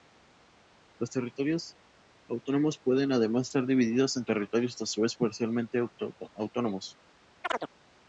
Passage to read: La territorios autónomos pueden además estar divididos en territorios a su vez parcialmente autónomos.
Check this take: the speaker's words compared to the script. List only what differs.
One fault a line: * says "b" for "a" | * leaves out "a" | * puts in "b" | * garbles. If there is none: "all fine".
* says "Los" for "La"